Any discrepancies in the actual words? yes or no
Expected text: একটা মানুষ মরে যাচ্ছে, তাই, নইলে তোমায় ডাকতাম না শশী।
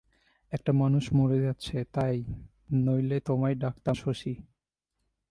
yes